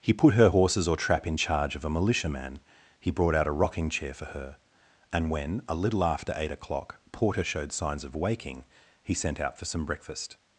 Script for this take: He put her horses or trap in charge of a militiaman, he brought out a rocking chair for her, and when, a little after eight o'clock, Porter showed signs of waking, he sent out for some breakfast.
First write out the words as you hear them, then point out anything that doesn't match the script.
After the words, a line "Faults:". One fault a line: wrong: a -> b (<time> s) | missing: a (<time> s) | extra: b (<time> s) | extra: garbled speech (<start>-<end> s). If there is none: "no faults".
He put her horses or trap in charge of a militiaman, he brought out a rocking chair for her, and when, a little after eight o'clock, Porter showed signs of waking, he sent out for some breakfast.
Faults:
no faults